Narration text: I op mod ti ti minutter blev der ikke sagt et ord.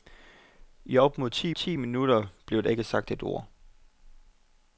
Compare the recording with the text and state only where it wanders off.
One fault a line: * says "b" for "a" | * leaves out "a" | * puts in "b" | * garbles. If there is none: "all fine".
all fine